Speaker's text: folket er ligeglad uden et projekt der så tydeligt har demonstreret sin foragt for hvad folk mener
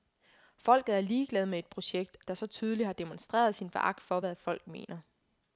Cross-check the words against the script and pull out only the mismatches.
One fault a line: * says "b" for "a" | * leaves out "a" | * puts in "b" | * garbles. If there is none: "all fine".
* says "med" for "uden"